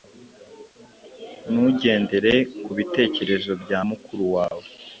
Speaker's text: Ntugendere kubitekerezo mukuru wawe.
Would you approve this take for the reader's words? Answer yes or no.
no